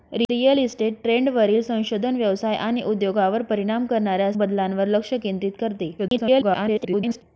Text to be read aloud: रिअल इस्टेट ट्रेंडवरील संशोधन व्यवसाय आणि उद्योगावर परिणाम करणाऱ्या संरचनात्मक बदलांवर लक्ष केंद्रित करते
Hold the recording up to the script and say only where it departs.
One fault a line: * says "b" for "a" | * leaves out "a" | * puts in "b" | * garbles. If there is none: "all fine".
* leaves out "संरचनात्मक"
* garbles